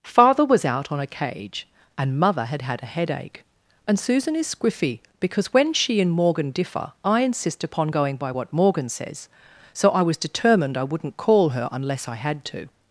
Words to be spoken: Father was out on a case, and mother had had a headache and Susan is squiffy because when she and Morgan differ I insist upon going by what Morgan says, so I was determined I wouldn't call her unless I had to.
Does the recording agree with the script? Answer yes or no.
no